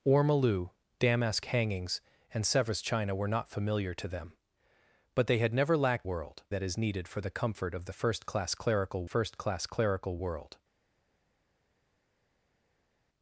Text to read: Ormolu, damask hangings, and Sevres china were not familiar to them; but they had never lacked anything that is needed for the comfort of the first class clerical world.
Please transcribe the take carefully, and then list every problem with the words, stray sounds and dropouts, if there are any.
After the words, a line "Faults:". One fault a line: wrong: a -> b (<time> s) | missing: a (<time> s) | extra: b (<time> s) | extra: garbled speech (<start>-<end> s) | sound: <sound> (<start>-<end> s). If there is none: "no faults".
Ormolu, damask hangings, and Sevres china were not familiar to them; but they had never lacked world that is needed for the comfort of the first class clerical first class clerical world.
Faults:
wrong: anything -> world (6.0 s)
extra: first class clerical (9.0 s)